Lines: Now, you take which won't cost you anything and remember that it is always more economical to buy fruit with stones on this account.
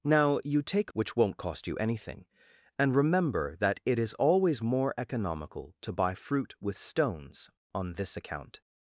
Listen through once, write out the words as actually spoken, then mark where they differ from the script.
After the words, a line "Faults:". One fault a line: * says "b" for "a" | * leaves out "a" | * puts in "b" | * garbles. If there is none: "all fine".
Now, you take which won't cost you anything and remember that it is always more economical to buy fruit with stones on this account.
Faults:
all fine